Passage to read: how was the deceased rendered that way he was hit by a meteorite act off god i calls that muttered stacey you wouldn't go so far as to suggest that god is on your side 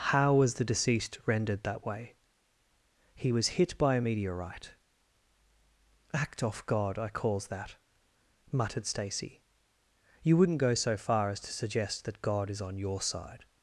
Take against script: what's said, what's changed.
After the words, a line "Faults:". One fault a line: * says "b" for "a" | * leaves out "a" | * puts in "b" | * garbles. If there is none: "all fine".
how was the deceased rendered that way he was hit by a meteorite act off god i calls that muttered stacey you wouldn't go so far as to suggest that god is on your side
Faults:
all fine